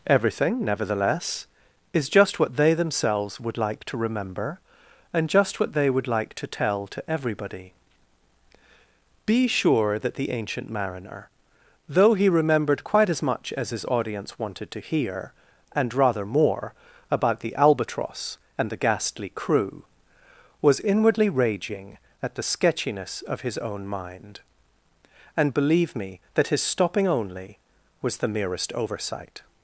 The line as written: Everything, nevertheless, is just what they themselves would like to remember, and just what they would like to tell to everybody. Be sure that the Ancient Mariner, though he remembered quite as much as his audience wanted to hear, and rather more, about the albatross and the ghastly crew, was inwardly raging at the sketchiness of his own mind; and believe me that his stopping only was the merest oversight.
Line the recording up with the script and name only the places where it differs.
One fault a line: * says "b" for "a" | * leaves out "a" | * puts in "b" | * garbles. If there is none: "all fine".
all fine